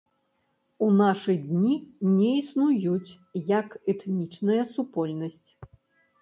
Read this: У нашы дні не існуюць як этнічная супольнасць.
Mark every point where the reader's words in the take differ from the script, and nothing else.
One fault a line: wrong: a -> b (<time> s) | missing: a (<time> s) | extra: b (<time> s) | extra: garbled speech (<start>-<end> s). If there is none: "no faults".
no faults